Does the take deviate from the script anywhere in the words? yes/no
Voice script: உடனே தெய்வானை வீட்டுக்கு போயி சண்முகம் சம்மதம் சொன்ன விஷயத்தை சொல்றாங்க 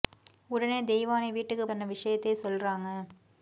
yes